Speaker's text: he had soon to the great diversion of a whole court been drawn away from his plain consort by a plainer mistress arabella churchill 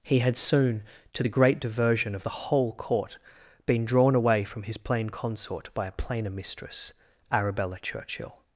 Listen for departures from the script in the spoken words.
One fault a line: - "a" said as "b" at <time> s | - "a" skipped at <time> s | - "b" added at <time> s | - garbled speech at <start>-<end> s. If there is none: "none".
- "a" said as "the" at 2.2 s